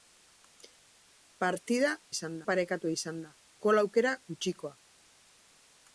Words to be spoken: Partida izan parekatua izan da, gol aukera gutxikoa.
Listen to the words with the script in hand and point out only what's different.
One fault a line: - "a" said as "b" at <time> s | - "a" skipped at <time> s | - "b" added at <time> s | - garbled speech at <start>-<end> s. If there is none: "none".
none